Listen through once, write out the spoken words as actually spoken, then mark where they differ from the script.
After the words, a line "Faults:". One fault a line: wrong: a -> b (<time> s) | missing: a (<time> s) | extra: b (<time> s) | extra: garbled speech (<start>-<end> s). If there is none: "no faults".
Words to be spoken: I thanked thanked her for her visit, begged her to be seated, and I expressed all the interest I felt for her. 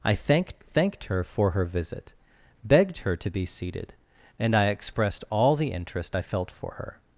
I thanked thanked her for her visit, begged her to be seated, and I expressed all the interest I felt for her.
Faults:
no faults